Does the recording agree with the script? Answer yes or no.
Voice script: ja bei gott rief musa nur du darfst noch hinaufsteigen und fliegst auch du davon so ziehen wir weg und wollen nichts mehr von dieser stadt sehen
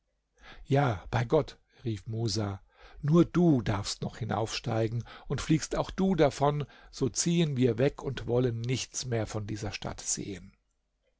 yes